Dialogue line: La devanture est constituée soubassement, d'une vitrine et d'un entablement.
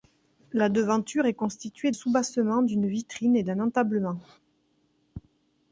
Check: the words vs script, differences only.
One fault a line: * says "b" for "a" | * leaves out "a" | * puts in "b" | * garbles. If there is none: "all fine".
all fine